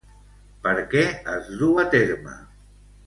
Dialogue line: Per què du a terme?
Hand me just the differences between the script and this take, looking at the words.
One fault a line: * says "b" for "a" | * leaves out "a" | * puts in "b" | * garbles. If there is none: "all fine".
* puts in "es"